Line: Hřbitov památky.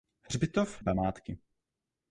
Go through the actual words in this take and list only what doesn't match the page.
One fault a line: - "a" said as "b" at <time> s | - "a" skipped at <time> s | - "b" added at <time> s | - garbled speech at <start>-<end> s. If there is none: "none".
none